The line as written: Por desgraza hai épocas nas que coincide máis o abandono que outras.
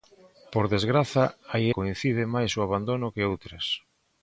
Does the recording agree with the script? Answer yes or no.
no